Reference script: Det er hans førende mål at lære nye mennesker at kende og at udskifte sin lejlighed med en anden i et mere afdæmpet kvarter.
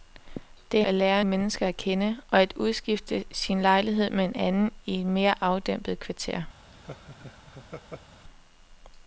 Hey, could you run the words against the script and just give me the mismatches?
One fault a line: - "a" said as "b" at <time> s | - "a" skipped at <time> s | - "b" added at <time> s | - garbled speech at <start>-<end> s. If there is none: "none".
- "hans førende mål" skipped at 0.8 s
- "nye" skipped at 1.2 s